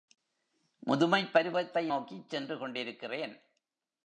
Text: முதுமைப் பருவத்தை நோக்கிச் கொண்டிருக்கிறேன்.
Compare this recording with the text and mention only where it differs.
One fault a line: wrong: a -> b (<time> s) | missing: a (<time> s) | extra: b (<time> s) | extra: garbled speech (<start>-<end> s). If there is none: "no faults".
extra: சென்று (2.3 s)